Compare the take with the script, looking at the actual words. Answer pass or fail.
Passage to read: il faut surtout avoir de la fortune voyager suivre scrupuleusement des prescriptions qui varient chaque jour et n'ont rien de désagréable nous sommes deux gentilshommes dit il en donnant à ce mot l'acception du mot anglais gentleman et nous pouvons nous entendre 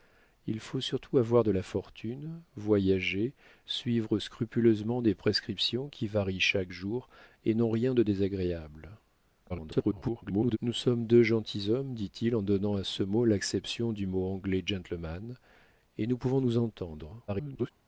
fail